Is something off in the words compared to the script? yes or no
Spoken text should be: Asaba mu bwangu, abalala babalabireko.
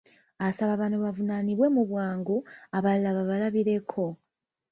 yes